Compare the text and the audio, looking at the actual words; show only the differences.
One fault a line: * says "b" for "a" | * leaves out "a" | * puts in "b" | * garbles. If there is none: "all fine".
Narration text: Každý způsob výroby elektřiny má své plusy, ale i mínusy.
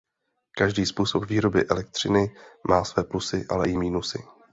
all fine